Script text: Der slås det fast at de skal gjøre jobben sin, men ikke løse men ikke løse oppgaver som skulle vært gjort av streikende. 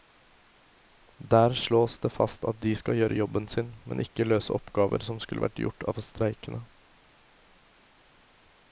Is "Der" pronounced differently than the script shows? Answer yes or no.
no